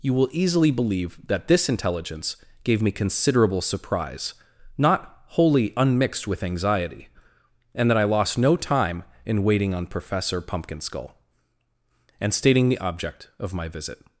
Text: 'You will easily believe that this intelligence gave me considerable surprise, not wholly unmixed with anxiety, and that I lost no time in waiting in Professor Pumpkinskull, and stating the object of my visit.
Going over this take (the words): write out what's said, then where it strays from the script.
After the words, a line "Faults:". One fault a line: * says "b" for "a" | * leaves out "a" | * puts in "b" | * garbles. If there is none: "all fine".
'You will easily believe that this intelligence gave me considerable surprise, not wholly unmixed with anxiety, and that I lost no time in waiting on Professor Pumpkinskull, and stating the object of my visit.
Faults:
* says "on" for "in"